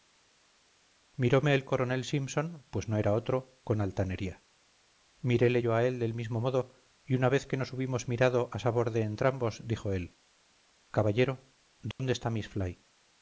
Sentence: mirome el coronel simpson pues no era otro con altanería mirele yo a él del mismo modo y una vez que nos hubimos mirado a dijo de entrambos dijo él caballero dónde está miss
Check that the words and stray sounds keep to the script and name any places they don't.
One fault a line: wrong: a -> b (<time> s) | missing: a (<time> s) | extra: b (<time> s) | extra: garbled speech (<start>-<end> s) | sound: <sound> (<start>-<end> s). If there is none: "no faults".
wrong: dijo -> sabor (8.6 s)
sound: dropout (11.9-12.0 s)